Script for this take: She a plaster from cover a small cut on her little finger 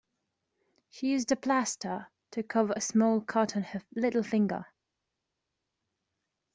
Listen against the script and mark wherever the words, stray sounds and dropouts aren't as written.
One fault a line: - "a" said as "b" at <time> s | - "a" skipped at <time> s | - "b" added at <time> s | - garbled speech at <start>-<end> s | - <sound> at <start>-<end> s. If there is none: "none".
- "used" added at 1.1 s
- "from" said as "to" at 2.3 s